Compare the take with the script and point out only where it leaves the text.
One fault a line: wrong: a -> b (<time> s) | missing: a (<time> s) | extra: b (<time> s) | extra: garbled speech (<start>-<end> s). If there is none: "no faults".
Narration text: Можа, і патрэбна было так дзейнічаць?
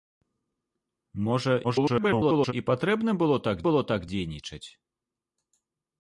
extra: garbled speech (1.6-2.5 s)
extra: было так (3.7 s)